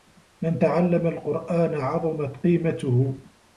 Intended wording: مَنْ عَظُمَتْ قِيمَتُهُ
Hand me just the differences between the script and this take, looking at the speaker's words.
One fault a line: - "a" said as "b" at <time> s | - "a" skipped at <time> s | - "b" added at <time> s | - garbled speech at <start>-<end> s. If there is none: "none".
- "تَعَلَّمَ الْقُرْآنَ" added at 0.6 s